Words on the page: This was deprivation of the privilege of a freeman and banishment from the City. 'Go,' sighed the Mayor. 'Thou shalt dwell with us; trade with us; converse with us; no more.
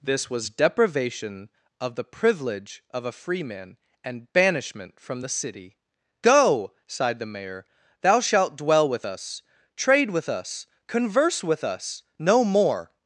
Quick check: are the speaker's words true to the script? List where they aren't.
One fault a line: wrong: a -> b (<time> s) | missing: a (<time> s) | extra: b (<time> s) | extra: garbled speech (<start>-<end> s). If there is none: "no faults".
no faults